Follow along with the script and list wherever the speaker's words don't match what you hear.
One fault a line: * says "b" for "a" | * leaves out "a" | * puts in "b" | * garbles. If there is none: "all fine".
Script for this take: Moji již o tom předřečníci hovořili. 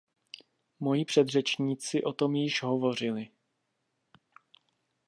* says "předřečníci" for "již"
* says "již" for "předřečníci"